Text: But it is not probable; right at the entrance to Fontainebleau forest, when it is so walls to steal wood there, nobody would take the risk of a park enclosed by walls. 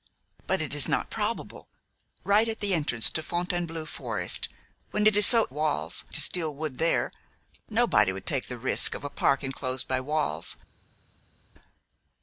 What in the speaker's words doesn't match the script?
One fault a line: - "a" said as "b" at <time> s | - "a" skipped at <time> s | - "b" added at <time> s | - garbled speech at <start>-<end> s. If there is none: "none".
none